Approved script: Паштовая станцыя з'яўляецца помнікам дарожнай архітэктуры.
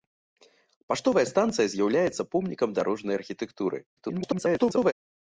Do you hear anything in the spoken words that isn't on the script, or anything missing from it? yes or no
yes